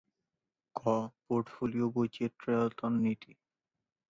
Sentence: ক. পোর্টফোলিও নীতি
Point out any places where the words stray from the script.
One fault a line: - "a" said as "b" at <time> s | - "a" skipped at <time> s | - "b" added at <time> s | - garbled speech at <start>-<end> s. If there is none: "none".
- "বৈচিত্র্যায়ন" added at 1.9 s